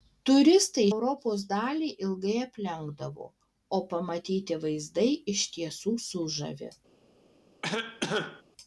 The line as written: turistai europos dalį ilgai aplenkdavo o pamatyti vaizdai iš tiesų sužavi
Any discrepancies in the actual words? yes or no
no